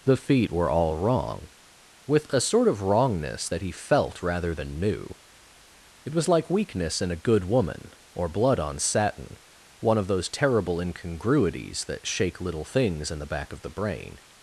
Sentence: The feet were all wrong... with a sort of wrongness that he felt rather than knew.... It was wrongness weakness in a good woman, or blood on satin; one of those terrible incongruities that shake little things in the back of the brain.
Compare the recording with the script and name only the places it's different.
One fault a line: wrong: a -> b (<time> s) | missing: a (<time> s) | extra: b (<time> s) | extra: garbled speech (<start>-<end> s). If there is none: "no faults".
wrong: wrongness -> like (6.3 s)